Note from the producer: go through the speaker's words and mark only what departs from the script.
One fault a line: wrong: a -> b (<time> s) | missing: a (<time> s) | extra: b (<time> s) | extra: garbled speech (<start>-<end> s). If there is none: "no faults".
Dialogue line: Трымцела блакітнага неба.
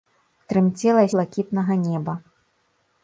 no faults